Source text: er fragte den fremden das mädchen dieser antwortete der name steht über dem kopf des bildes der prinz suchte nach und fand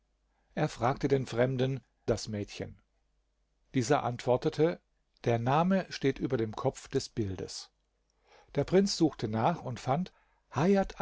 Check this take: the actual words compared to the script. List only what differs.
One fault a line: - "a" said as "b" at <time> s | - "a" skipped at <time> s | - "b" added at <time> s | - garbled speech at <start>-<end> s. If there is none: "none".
none